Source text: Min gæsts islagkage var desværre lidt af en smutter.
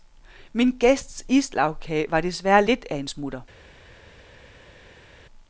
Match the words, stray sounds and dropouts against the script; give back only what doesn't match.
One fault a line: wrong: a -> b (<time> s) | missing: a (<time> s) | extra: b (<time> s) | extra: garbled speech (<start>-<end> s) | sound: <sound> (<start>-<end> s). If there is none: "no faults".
no faults